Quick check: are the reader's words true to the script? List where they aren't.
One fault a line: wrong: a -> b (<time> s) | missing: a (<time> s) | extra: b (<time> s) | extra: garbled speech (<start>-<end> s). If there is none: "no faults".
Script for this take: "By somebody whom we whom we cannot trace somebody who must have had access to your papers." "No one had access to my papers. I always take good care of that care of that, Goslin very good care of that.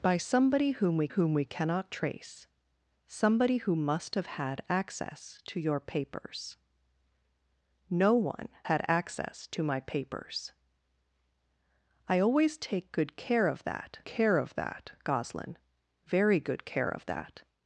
no faults